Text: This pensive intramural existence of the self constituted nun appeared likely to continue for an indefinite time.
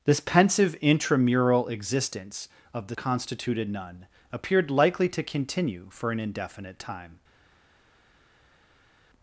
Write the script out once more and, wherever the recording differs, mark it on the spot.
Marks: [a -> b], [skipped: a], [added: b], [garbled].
This pensive intramural existence of the [skipped: self] constituted nun appeared likely to continue for an indefinite time.